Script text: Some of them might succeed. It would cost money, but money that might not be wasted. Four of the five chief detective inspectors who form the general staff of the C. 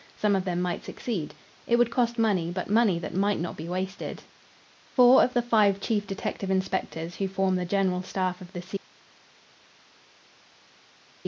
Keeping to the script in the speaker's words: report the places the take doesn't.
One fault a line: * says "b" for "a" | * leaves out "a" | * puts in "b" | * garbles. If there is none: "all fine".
all fine